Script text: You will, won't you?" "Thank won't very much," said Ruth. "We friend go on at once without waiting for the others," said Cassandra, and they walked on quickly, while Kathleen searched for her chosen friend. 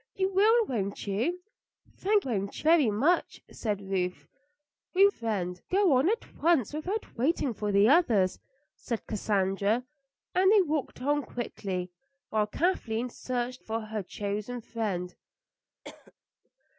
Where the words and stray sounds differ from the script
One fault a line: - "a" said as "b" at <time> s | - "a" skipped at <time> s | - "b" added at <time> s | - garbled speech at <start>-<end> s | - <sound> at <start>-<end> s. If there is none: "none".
- cough at 15.8-16.1 s